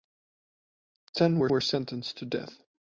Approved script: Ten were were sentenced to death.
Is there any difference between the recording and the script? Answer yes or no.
no